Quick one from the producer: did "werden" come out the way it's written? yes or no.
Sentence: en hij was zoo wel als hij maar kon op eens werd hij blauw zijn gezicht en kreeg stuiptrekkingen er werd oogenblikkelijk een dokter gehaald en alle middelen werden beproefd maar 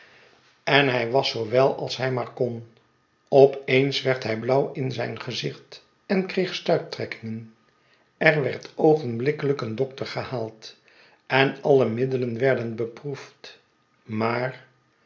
yes